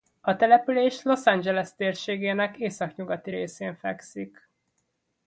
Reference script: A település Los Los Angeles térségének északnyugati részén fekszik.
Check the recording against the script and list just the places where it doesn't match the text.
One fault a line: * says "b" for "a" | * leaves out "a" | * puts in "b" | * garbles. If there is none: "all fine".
* leaves out "Los"